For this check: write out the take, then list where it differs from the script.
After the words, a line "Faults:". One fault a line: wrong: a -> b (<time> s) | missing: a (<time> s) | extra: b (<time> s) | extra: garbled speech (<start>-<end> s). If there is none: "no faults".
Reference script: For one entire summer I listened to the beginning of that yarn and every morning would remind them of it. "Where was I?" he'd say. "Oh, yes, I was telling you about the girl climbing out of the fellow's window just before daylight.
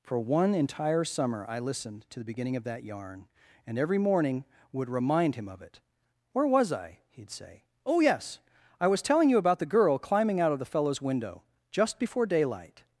For one entire summer I listened to the beginning of that yarn and every morning would remind him of it. "Where was I?" he'd say. "Oh, yes, I was telling you about the girl climbing out of the fellow's window just before daylight.
Faults:
wrong: them -> him (5.3 s)